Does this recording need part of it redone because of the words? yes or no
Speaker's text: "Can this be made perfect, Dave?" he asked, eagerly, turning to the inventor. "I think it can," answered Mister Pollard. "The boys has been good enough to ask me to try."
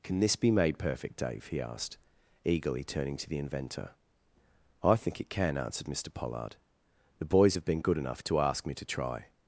yes